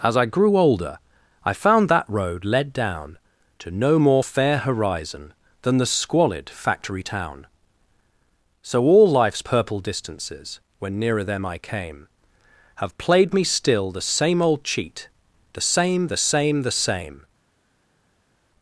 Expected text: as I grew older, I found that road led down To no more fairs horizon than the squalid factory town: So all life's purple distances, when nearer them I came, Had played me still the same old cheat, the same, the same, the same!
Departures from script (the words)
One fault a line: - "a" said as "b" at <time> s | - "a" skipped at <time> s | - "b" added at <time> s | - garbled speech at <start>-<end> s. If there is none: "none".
- "fairs" said as "fair" at 4.2 s
- "Had" said as "Have" at 12.8 s